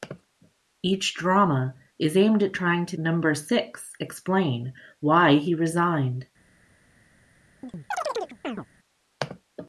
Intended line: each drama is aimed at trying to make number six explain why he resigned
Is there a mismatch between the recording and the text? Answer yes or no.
yes